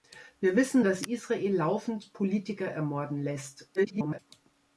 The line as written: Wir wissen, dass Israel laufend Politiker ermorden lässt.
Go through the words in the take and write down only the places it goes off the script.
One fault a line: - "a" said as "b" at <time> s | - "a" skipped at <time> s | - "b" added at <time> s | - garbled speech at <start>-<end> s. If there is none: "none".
- garbled speech at 3.8-4.2 s